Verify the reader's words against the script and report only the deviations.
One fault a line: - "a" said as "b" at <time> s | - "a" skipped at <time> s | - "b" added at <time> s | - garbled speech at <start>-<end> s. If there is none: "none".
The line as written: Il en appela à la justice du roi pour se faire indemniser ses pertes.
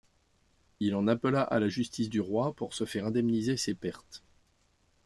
none